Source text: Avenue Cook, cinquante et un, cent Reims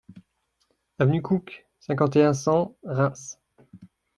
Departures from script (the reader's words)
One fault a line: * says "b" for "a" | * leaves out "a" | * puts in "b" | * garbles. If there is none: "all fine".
all fine